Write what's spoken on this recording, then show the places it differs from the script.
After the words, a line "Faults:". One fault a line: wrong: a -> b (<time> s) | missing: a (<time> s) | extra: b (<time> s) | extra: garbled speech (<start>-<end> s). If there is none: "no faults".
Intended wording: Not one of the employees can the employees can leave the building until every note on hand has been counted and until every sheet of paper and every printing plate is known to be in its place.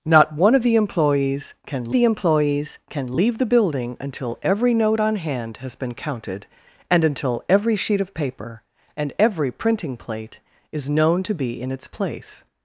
Not one of the employees can the employees can leave the building until every note on hand has been counted and until every sheet of paper and every printing plate is known to be in its place.
Faults:
no faults